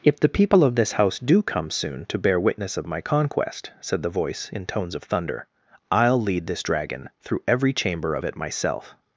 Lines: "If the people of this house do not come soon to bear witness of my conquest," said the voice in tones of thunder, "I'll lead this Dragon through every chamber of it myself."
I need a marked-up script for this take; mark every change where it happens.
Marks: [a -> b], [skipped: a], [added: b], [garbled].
"If the people of this house do [skipped: not] come soon to bear witness of my conquest," said the voice in tones of thunder, "I'll lead this Dragon through every chamber of it myself."